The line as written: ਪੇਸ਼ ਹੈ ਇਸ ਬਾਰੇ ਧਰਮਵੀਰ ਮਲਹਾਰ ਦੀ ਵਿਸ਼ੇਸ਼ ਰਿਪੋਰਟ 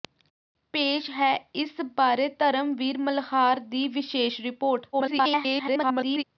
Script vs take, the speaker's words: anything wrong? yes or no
yes